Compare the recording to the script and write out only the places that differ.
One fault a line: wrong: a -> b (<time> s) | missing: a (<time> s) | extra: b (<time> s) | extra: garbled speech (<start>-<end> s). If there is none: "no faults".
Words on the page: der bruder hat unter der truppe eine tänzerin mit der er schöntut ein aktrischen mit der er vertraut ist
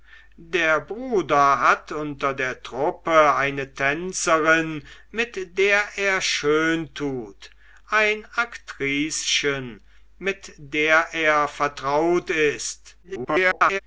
extra: garbled speech (13.0-13.8 s)